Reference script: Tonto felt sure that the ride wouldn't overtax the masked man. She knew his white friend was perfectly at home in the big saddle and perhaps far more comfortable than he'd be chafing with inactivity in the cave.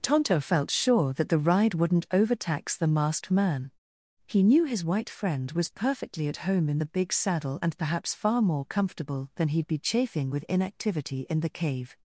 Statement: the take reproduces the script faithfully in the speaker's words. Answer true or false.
false